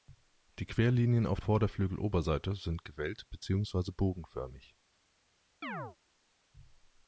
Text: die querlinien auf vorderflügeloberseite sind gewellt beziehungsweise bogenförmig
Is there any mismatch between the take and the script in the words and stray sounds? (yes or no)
yes